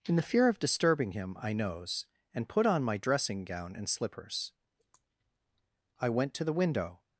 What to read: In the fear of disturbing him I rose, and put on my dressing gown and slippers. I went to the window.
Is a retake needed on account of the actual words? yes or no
yes